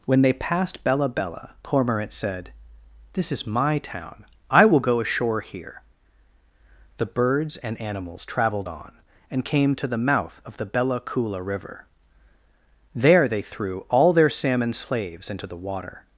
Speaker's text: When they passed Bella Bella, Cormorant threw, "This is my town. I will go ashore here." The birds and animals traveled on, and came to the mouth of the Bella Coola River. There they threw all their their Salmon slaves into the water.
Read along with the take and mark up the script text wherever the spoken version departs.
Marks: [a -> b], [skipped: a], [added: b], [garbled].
When they passed Bella Bella, Cormorant [threw, -> said] "This is my town. I will go ashore here." The birds and animals traveled on, and came to the mouth of the Bella Coola River. There they threw all their [skipped: their] Salmon slaves into the water.